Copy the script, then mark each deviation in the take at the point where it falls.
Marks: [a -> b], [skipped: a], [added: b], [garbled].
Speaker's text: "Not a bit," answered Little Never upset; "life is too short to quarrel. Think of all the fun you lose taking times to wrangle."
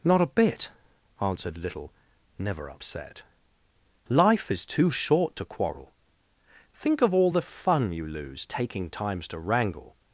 "Not a bit," answered Little Never upset; "life is too short to quarrel. Think of all the fun you lose taking times to wrangle."